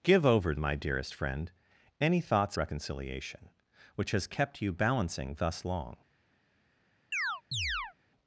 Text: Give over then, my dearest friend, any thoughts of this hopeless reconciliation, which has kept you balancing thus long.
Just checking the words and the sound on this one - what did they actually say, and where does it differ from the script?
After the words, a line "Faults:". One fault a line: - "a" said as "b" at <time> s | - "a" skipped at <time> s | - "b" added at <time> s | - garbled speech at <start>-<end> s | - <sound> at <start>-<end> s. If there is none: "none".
Give over my dearest friend, any thoughts reconciliation, which has kept you balancing thus long.
Faults:
- "then" skipped at 0.6 s
- "of this hopeless" skipped at 2.6 s
- chirp at 7.1-7.9 s